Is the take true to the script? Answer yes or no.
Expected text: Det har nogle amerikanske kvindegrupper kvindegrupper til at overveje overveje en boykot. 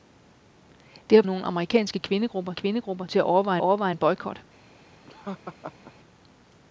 yes